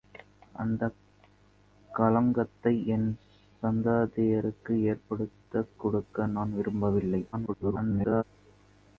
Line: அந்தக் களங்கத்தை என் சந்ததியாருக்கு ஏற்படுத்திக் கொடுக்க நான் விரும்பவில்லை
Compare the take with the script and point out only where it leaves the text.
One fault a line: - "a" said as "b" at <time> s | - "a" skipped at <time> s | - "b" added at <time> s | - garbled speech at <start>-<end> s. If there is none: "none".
- garbled speech at 7.3-8.2 s